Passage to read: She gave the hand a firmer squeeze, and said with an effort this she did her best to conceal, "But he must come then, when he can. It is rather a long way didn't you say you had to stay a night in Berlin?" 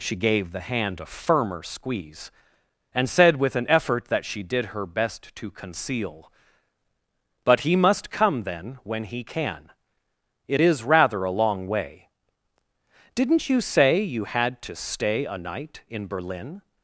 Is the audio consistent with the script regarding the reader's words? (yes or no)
no